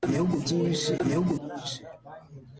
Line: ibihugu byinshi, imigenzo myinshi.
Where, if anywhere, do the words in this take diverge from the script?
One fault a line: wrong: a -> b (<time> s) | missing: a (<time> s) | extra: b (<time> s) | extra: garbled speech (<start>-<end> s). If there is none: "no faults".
wrong: imigenzo -> ibihugu (1.0 s)